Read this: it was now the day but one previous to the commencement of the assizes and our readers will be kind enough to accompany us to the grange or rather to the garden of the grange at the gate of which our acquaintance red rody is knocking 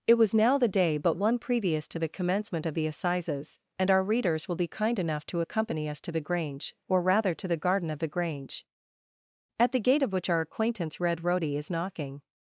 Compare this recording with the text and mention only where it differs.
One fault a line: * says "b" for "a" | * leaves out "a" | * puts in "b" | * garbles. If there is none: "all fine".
all fine